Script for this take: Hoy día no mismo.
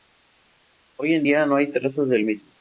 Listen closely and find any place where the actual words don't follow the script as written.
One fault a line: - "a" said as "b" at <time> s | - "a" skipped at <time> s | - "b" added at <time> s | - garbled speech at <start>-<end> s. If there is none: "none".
- "en" added at 1.1 s
- "hay trazas del" added at 1.5 s